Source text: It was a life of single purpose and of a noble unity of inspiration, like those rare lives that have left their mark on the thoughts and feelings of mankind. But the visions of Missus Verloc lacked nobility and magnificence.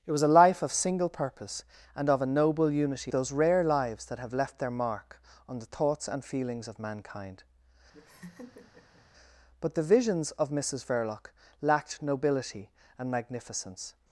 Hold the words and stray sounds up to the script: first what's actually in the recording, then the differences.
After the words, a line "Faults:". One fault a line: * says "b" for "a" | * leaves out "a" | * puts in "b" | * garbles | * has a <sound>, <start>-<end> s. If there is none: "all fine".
It was a life of single purpose and of a noble unity those rare lives that have left their mark on the thoughts and feelings of mankind. But the visions of Missus Verloc lacked nobility and magnificence.
Faults:
* leaves out "of inspiration like"
* has a laugh, 7.9-9.1 s